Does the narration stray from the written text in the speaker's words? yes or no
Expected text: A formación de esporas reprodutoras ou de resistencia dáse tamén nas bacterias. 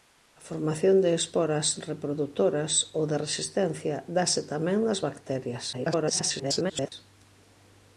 yes